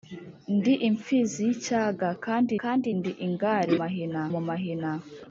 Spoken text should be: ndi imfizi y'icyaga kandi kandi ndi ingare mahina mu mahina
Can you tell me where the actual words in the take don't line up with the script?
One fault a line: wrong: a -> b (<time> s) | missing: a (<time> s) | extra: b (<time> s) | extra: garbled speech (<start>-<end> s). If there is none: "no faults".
no faults